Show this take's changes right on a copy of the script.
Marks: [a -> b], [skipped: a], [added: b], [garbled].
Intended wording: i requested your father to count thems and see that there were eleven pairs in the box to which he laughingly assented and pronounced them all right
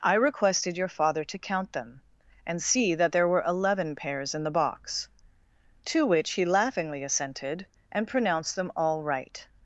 i requested your father to count [thems -> them] and see that there were eleven pairs in the box to which he laughingly assented and pronounced them all right